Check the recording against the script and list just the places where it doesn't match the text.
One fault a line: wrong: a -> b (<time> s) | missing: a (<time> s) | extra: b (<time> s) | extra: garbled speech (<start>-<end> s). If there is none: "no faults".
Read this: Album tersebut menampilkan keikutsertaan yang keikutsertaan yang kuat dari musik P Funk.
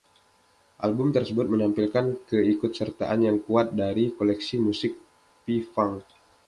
missing: keikutsertaan yang (3.4 s)
extra: koleksi (4.1 s)